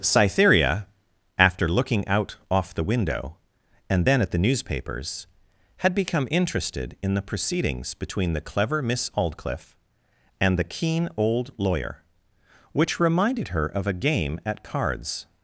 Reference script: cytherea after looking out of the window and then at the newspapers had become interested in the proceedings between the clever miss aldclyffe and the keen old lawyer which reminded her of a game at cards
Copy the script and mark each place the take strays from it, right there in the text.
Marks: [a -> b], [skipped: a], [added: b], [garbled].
cytherea after looking out [of -> off] the window and then at the newspapers had become interested in the proceedings between the clever miss aldclyffe and the keen old lawyer which reminded her of a game at cards